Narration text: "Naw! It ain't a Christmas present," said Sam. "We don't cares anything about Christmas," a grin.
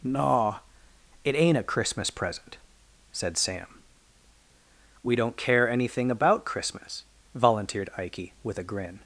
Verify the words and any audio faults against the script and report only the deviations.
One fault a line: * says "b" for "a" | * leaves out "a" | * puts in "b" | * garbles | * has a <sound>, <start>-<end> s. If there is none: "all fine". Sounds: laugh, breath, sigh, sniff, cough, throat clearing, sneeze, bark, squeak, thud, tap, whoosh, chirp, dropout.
* says "care" for "cares"
* puts in "volunteered Ikey with"